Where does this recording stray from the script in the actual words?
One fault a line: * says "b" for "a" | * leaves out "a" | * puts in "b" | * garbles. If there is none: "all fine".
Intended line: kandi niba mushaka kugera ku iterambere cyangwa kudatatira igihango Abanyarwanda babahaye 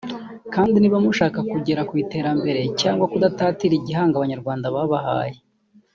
all fine